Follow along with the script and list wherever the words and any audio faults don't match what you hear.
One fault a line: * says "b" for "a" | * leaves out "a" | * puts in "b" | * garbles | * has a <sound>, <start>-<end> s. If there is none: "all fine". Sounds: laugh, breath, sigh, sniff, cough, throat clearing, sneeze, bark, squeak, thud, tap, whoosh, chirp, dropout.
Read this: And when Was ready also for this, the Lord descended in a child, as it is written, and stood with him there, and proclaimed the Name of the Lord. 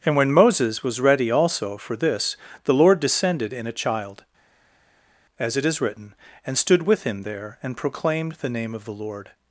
* puts in "Moses"